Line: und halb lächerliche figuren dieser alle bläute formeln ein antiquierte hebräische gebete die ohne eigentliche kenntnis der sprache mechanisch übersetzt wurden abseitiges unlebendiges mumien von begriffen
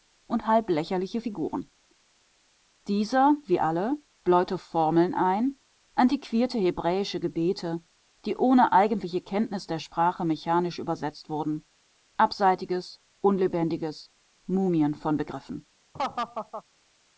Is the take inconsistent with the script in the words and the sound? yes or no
yes